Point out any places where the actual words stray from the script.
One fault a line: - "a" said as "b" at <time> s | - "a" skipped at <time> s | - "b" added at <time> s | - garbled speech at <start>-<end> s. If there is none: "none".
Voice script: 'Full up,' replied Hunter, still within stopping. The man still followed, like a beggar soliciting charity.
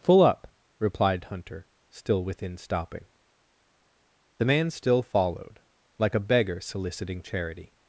none